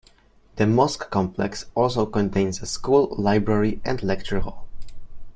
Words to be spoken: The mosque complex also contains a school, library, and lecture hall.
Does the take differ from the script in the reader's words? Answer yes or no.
no